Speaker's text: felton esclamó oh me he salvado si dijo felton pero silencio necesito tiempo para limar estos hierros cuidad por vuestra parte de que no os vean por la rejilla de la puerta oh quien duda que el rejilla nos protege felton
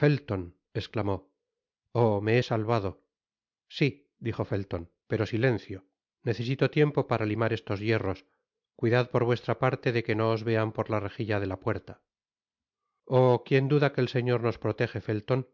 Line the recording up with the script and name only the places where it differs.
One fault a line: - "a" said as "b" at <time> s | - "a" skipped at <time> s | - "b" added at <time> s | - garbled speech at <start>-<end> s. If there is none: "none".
- "rejilla" said as "señor" at 14.1 s